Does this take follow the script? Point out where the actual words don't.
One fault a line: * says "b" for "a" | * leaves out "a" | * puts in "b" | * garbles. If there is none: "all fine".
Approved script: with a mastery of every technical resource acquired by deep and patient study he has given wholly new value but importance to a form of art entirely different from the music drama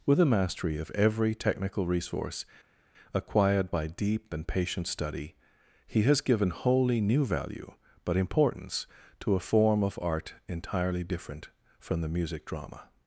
all fine